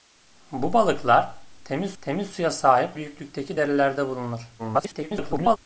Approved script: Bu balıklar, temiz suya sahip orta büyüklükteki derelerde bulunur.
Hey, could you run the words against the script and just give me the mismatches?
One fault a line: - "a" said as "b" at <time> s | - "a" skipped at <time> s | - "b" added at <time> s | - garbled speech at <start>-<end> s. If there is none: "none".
- "temiz" added at 2.0 s
- "orta" skipped at 3.0 s
- garbled speech at 4.6-5.6 s